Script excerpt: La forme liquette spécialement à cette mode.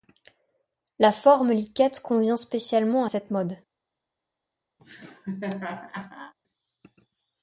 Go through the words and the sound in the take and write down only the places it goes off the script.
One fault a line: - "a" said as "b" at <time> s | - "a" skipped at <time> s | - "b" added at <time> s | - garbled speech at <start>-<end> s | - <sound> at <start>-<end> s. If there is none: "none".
- "convient" added at 2.0 s
- laugh at 4.8-6.3 s